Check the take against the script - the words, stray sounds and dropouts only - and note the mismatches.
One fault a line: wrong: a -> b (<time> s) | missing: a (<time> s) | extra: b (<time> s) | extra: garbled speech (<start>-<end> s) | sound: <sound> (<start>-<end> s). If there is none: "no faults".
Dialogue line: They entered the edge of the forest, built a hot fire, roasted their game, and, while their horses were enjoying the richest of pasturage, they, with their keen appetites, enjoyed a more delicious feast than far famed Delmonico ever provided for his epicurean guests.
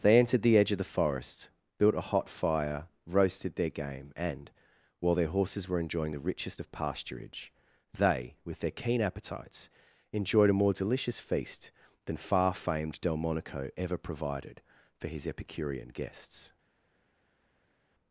no faults